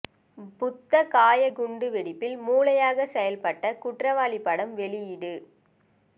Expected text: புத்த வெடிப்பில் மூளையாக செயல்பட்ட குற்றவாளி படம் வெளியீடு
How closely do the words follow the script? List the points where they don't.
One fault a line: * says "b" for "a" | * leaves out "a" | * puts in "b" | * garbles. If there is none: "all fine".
* puts in "கயா குண்டு"